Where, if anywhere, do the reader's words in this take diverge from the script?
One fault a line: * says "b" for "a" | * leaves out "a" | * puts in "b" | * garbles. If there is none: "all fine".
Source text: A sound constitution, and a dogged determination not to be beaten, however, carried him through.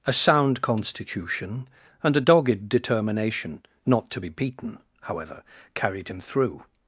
all fine